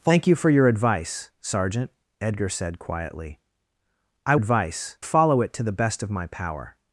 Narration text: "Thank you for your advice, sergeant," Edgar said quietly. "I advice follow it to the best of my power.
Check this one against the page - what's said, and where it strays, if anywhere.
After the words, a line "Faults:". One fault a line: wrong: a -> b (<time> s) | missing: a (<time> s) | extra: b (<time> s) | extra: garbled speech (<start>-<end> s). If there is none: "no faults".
"Thank you for your advice, sergeant," Edgar said quietly. "I advice follow it to the best of my power.
Faults:
no faults